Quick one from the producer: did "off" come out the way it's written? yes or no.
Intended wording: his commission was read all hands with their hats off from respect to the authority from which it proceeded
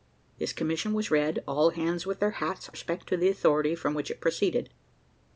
no